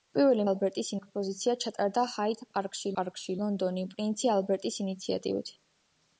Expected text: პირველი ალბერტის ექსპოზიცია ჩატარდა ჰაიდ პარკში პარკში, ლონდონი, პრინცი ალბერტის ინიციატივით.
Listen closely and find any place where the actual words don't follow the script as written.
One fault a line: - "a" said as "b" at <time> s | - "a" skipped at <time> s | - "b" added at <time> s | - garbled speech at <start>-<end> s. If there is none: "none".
none